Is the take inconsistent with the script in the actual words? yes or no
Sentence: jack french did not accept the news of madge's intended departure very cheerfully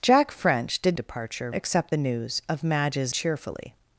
yes